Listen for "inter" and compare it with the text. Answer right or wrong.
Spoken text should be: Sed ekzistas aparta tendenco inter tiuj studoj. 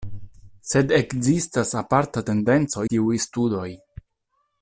wrong